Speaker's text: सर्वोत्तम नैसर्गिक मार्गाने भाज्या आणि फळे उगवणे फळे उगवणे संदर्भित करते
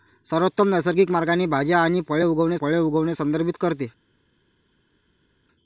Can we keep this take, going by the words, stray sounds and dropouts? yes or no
yes